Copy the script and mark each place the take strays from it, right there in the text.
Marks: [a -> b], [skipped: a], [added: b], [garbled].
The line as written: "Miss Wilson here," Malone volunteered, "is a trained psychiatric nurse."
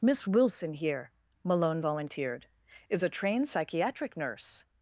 "Miss Wilson here," Malone volunteered, "is a trained psychiatric nurse."